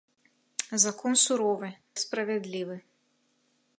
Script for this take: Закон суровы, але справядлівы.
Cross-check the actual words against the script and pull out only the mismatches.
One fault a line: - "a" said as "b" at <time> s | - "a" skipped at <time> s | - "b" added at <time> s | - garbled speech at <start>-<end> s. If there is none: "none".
- "але" skipped at 1.7 s